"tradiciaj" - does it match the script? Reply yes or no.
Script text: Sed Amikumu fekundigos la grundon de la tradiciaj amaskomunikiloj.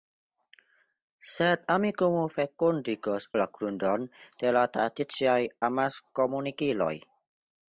yes